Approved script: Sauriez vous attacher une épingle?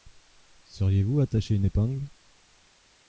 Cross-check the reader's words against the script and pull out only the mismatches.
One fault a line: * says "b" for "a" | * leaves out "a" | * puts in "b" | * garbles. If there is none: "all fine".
all fine